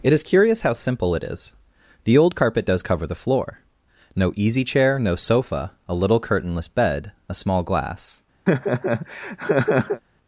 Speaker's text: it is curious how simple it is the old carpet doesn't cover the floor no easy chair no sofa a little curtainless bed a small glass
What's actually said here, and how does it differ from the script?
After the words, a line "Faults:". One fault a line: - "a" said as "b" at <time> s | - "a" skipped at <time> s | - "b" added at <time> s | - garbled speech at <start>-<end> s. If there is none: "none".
it is curious how simple it is the old carpet does cover the floor no easy chair no sofa a little curtainless bed a small glass
Faults:
- "doesn't" said as "does" at 2.6 s